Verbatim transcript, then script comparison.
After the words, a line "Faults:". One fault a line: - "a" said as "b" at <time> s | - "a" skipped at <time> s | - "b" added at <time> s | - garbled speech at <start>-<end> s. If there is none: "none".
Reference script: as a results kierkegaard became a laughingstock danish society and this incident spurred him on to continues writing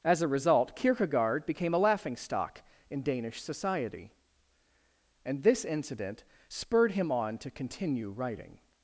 as a result kierkegaard became a laughingstock in danish society and this incident spurred him on to continue writing
Faults:
- "results" said as "result" at 0.3 s
- "in" added at 2.9 s
- "continues" said as "continue" at 7.5 s